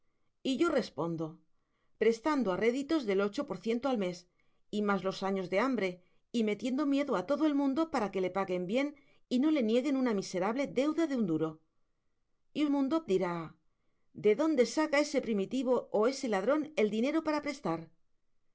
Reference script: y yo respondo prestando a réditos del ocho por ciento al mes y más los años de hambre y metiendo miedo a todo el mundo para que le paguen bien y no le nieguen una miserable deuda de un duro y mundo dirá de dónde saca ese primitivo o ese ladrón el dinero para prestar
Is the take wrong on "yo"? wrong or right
right